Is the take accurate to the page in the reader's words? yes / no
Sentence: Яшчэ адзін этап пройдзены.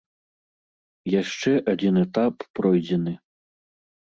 yes